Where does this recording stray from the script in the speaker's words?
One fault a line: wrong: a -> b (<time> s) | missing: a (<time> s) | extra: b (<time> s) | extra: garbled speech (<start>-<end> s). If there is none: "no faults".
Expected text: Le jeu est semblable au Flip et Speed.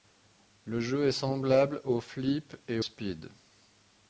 no faults